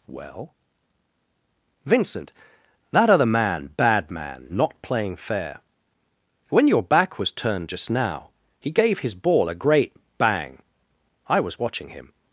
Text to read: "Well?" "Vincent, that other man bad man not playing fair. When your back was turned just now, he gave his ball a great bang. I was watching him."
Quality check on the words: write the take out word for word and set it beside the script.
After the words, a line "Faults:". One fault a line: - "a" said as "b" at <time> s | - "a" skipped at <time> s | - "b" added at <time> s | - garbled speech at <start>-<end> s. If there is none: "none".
"Well?" "Vincent, that other man bad man not playing fair. When your back was turned just now, he gave his ball a great bang. I was watching him."
Faults:
none